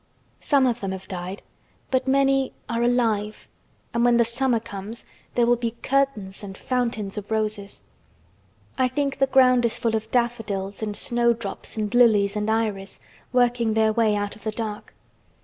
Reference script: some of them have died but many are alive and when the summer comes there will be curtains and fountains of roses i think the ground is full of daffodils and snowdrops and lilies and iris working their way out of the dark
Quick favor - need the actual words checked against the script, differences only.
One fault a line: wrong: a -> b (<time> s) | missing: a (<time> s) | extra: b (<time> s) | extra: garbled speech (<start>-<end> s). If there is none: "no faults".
no faults